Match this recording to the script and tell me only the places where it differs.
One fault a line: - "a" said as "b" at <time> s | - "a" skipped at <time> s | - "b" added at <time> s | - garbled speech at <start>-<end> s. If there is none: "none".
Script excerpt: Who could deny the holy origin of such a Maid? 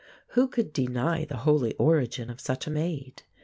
none